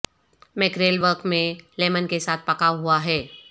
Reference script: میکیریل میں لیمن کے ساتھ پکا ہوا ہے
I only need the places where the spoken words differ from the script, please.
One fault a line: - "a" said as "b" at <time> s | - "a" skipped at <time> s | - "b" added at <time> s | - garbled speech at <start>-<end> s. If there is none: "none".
- "ورق" added at 1.0 s